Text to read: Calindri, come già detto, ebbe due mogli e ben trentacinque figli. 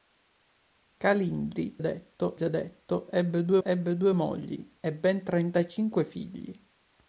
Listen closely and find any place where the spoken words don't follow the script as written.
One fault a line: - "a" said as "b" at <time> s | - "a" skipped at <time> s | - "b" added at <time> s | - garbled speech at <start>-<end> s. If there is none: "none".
- "come" said as "detto" at 1.8 s
- "ebbe due" added at 3.6 s